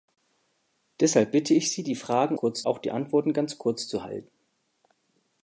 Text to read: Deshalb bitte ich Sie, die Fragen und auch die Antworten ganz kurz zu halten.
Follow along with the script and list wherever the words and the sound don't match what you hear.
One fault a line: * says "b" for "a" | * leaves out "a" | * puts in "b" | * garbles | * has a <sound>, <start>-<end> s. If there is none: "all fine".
* says "kurz" for "und"